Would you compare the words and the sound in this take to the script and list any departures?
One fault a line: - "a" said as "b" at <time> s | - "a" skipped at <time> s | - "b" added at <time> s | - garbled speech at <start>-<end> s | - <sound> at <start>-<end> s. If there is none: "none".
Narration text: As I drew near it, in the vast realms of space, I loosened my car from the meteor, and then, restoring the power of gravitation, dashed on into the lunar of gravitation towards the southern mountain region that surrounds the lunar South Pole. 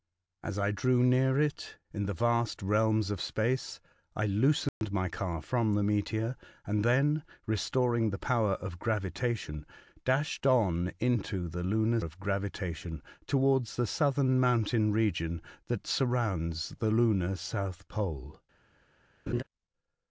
- dropout at 4.7-4.8 s
- laugh at 19.3-19.4 s